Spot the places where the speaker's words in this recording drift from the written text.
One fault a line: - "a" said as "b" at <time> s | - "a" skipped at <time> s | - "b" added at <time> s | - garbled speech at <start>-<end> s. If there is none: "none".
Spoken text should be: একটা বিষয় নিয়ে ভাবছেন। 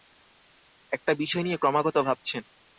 - "ক্রমাগত" added at 1.6 s